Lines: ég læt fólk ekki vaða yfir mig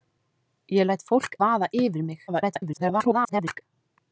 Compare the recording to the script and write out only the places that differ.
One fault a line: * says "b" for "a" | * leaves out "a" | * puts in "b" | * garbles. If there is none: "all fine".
* leaves out "ekki"
* garbles